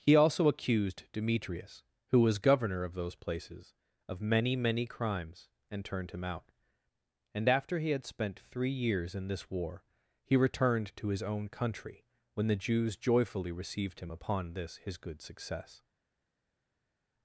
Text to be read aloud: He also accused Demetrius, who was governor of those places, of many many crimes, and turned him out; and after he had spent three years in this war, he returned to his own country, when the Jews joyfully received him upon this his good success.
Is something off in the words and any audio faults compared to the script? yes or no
no